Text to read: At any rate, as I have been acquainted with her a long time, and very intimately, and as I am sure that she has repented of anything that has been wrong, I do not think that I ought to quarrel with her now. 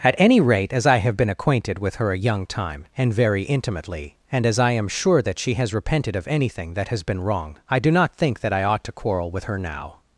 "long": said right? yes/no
no